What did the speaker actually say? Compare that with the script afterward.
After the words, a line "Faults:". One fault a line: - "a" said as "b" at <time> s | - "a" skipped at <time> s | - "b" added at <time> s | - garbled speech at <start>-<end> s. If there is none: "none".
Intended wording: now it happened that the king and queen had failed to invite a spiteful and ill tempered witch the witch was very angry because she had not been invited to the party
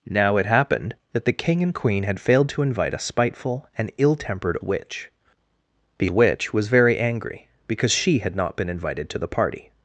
now it happened that the king and queen had failed to invite a spiteful and ill tempered witch the witch was very angry because she had not been invited to the party
Faults:
none